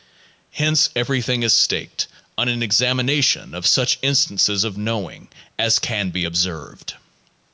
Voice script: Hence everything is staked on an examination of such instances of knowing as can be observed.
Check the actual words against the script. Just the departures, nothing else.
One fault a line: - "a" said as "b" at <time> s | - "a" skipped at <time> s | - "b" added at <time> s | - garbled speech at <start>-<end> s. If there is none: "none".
none